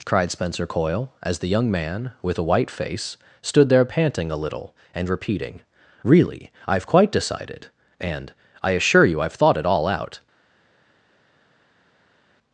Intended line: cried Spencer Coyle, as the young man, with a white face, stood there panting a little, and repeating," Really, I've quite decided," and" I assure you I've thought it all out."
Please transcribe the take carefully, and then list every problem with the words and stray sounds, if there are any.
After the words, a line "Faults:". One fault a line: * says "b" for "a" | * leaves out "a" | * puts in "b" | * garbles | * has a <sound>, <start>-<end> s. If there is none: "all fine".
cried Spencer Coyle, as the young man, with a white face, stood there panting a little, and repeating," Really, I've quite decided," and" I assure you I've thought it all out."
Faults:
all fine